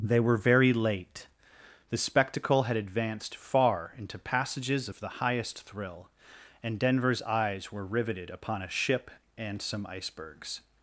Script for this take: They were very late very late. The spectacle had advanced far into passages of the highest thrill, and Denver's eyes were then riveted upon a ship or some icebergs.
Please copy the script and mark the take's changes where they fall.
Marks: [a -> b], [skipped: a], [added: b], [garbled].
They were very late [skipped: very late.] The spectacle had advanced far into passages of the highest thrill, and Denver's eyes were [skipped: then] riveted upon a ship [or -> and] some icebergs.